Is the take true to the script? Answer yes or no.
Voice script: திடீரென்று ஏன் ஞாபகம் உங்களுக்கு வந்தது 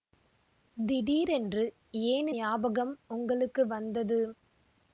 yes